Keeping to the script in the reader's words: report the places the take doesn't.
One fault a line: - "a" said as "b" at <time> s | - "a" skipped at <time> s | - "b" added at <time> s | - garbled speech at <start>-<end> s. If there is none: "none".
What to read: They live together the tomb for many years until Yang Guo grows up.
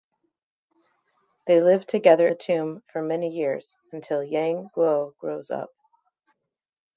none